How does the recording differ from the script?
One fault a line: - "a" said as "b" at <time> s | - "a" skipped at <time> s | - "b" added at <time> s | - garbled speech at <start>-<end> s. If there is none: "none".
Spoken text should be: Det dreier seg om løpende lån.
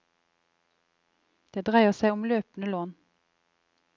none